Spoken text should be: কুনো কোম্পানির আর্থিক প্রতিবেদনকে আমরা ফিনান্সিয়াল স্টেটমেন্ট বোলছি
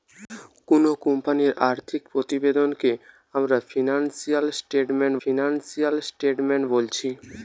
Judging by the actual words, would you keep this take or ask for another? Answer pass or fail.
fail